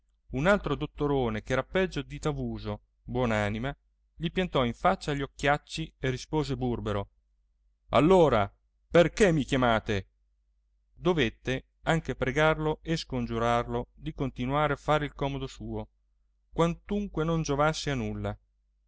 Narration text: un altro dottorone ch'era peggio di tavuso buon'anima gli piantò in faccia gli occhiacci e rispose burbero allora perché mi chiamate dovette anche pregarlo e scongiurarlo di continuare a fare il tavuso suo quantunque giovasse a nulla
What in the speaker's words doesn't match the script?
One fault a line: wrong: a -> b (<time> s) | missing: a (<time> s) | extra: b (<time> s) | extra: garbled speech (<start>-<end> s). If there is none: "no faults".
wrong: tavuso -> comodo (15.1 s)
extra: non (17.2 s)